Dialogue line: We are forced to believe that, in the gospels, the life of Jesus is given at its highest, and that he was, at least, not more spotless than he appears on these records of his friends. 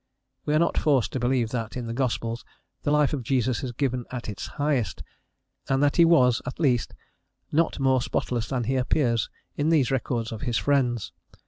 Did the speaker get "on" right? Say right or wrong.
wrong